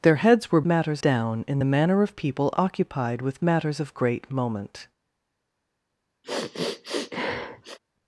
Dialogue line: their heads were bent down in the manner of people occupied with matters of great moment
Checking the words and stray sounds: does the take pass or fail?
fail